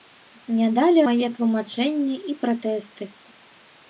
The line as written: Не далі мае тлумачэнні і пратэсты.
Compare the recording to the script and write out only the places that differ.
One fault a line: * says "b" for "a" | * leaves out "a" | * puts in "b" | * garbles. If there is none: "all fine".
all fine